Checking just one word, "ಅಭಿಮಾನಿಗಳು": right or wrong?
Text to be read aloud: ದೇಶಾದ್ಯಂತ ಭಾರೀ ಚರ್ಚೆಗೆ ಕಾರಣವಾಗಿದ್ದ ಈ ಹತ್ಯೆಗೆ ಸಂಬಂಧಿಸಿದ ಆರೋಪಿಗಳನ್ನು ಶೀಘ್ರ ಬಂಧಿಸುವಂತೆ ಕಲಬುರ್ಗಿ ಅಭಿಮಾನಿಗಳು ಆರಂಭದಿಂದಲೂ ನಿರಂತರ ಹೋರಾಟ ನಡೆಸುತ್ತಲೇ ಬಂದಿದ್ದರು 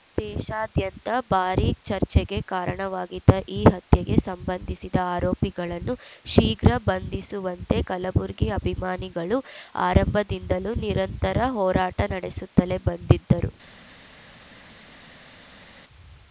right